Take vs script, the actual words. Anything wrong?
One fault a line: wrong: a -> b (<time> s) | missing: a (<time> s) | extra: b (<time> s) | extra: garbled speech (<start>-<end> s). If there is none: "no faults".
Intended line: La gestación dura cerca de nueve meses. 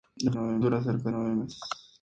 wrong: gestación -> nueve (0.3 s)
missing: de (1.1 s)